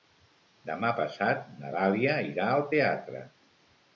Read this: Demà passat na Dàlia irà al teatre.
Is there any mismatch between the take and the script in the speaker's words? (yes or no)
no